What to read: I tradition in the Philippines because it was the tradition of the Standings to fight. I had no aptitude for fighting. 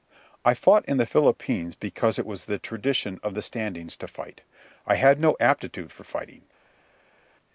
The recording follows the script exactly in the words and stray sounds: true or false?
false